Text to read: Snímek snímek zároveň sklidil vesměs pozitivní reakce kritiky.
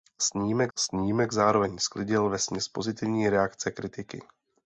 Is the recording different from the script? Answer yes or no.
no